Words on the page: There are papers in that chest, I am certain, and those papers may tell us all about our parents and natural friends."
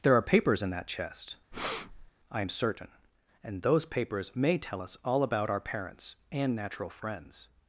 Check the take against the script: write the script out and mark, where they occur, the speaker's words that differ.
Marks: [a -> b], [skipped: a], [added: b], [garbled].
There are papers in that chest, I am certain, and those papers may tell us all about our parents and natural friends."